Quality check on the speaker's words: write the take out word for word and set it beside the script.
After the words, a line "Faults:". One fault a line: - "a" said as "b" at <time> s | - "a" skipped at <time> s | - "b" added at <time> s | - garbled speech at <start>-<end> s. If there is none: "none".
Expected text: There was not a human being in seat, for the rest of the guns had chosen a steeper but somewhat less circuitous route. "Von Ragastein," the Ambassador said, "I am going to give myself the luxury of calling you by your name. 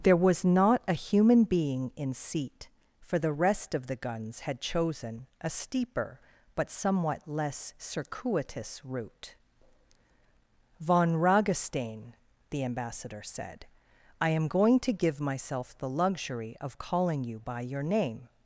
There was not a human being in seat, for the rest of the guns had chosen a steeper but somewhat less circuitous route. "Von Ragastein," the Ambassador said, "I am going to give myself the luxury of calling you by your name.
Faults:
none